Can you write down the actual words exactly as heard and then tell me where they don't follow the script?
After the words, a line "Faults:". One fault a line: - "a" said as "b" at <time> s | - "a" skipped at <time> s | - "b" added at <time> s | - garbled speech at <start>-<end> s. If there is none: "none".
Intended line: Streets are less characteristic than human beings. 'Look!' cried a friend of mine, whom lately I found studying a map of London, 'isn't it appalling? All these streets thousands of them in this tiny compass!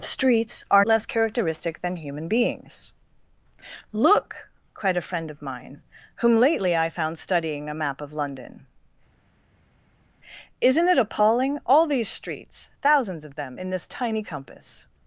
Streets are less characteristic than human beings. 'Look!' cried a friend of mine, whom lately I found studying a map of London, 'isn't it appalling? All these streets thousands of them in this tiny compass!
Faults:
none